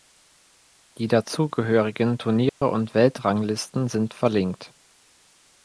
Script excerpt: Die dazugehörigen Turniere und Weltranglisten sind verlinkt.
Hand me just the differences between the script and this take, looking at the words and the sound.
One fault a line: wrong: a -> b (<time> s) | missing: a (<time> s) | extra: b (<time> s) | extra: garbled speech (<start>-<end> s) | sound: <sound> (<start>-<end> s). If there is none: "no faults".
sound: dropout (2.5-2.6 s)